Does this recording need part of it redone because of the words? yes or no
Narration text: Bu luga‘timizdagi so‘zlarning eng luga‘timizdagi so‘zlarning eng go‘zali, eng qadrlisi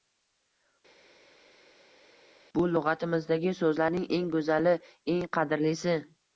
yes